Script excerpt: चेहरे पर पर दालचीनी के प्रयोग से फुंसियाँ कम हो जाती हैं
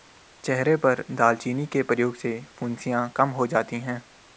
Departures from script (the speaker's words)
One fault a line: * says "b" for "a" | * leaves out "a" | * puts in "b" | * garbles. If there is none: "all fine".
* leaves out "पर"